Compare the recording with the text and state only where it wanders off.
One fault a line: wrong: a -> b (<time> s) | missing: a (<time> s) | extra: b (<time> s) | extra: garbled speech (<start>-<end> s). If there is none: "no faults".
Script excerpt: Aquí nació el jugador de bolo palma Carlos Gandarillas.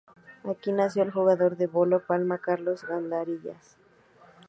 no faults